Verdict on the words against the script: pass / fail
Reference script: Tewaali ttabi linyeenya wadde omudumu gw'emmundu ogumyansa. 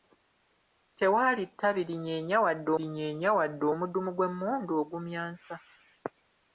fail